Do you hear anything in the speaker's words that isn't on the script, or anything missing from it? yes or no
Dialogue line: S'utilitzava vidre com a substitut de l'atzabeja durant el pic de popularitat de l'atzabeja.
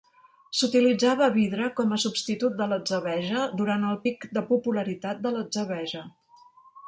no